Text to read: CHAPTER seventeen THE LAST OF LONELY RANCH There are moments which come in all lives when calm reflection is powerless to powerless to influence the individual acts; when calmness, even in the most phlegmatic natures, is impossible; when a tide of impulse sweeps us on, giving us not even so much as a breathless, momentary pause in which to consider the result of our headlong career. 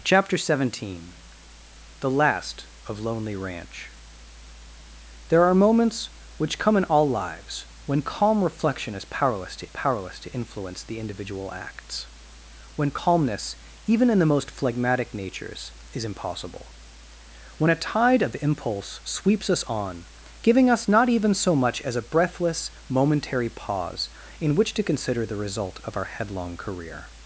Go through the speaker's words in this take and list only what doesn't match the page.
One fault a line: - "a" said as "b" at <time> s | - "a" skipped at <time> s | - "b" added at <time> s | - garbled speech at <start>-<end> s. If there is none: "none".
none